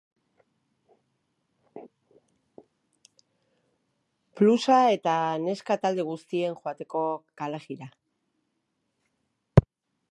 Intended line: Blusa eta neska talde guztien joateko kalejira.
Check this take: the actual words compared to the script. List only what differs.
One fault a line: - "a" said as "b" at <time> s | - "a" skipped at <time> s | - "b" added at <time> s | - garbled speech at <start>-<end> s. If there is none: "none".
none